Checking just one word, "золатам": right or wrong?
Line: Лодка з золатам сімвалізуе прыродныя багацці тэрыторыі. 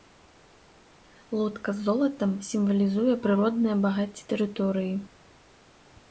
right